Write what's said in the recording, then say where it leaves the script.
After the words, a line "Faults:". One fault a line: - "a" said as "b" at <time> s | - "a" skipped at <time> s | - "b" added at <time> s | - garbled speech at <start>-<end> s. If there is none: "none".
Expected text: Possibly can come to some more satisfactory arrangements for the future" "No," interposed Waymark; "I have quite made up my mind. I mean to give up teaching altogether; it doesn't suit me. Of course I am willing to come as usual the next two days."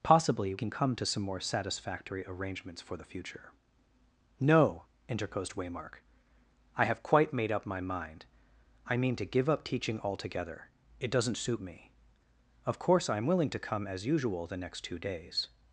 Possibly can come to some more satisfactory arrangements for the future" "No," interposed Waymark; "I have quite made up my mind. I mean to give up teaching altogether; it doesn't suit me. Of course I am willing to come as usual the next two days."
Faults:
none